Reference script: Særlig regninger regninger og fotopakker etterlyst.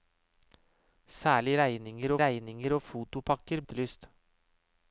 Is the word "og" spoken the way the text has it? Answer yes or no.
yes